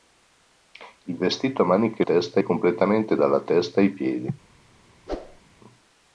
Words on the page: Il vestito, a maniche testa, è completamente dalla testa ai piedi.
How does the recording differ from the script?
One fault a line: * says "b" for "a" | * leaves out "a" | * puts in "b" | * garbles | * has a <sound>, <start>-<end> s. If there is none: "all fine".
* has a whoosh, 5.1-5.4 s